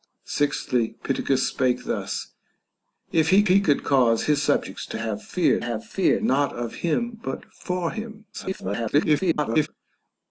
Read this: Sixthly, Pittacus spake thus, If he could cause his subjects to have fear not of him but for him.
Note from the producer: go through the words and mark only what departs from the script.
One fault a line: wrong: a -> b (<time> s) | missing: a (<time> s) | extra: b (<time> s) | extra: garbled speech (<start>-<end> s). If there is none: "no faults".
extra: he (3.5 s)
extra: have fear (5.6 s)
extra: garbled speech (8.3-9.7 s)